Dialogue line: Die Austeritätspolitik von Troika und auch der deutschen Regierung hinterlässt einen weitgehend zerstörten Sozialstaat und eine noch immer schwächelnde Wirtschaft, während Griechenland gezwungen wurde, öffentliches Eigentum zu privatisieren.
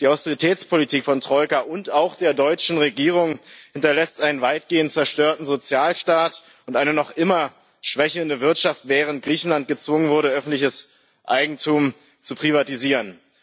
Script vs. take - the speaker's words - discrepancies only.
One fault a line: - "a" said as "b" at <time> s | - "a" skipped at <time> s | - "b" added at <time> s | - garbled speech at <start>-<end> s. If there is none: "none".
none